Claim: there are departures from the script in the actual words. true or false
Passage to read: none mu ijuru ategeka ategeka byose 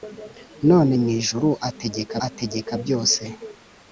false